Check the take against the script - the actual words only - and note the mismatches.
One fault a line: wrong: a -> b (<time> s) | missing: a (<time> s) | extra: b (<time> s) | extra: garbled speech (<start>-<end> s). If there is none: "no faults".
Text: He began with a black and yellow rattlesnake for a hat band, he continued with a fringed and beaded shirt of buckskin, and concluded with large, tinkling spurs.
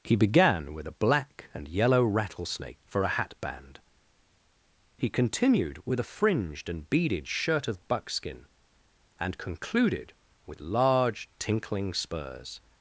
no faults